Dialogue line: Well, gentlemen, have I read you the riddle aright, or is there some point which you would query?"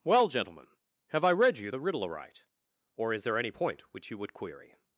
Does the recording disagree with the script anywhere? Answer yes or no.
yes